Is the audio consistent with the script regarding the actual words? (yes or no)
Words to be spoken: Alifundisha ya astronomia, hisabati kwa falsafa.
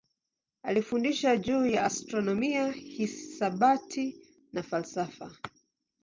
no